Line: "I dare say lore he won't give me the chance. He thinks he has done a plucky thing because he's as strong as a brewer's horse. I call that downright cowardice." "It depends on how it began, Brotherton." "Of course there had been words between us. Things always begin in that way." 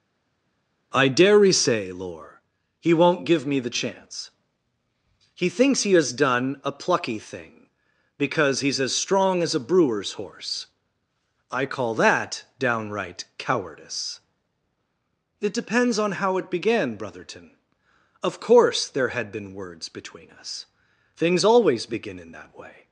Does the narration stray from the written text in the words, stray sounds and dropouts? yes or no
no